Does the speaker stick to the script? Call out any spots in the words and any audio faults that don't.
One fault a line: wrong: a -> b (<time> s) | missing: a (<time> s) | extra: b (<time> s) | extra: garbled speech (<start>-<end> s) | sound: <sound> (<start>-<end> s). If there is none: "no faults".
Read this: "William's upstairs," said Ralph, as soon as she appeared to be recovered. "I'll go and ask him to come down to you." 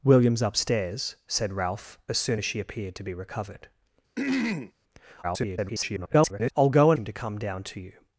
sound: throat clearing (4.2-4.7 s)
extra: garbled speech (5.2-6.5 s)
missing: ask (7.0 s)